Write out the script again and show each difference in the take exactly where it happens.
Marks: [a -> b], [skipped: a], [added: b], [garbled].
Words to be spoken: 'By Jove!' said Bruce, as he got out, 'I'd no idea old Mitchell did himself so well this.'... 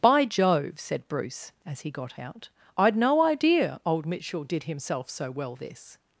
'By Jove!' said Bruce, as he got out, 'I'd no idea old Mitchell did himself so well this.'...